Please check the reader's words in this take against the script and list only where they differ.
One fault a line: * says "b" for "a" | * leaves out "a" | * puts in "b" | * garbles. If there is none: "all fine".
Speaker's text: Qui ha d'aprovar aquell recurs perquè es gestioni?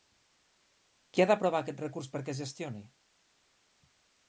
* says "aquest" for "aquell"